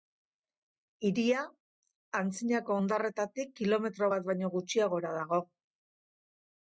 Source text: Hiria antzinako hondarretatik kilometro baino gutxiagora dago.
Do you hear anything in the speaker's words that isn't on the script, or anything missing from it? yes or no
yes